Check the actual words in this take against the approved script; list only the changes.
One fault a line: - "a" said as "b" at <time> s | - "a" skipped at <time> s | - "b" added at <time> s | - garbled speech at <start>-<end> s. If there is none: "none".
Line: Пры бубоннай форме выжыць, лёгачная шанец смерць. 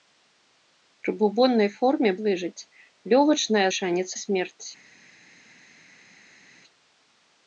none